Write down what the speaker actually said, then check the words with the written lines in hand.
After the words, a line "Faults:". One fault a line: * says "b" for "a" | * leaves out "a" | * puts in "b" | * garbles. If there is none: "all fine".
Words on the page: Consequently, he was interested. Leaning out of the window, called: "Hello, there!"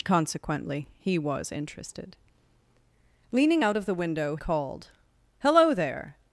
Consequently, he was interested. Leaning out of the window, called: "Hello, there!"
Faults:
all fine